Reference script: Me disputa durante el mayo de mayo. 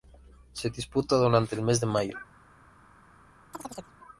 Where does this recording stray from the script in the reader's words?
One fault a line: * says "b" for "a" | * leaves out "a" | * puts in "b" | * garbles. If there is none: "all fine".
* says "Se" for "Me"
* says "mes" for "mayo"